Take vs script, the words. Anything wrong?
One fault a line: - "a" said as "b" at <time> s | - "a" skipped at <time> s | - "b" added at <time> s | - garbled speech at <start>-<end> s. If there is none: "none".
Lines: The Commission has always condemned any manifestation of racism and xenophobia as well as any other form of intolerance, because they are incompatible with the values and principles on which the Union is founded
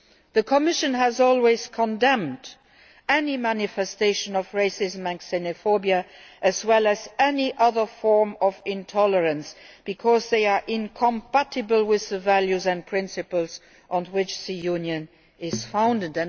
none